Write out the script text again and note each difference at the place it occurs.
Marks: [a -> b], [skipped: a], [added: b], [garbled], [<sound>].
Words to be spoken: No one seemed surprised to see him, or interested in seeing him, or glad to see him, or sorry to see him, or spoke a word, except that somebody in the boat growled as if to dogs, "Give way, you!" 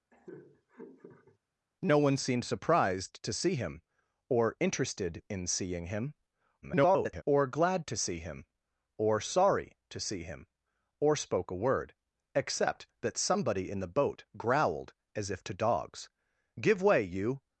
[laugh] No one seemed surprised to see him, or interested in seeing him, [garbled] or glad to see him, or sorry to see him, or spoke a word, except that somebody in the boat growled as if to dogs, "Give way, you!"